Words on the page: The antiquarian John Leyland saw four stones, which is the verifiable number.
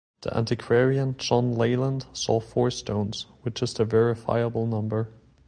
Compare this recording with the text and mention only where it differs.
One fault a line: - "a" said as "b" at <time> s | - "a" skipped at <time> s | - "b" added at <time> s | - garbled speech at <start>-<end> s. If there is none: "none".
none